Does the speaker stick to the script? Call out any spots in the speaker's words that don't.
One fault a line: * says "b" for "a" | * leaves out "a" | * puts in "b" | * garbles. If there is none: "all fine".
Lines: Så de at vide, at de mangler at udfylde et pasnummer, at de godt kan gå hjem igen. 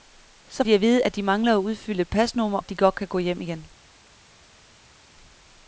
all fine